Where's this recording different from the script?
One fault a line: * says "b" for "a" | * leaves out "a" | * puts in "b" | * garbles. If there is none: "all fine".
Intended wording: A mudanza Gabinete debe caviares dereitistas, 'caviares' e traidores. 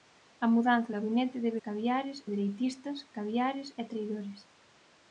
all fine